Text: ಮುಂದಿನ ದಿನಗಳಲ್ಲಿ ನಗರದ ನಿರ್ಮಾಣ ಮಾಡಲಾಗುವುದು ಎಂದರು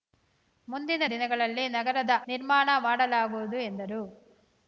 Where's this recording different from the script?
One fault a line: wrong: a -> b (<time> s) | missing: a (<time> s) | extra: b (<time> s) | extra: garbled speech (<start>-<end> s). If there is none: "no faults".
no faults